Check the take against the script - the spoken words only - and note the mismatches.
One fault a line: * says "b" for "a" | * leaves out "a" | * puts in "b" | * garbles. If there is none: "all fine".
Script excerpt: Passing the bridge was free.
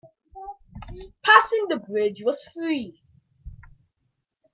all fine